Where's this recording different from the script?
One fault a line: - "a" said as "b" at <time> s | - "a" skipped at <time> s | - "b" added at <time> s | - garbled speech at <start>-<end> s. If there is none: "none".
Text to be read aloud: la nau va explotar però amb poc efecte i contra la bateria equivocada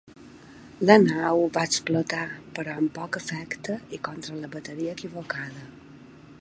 none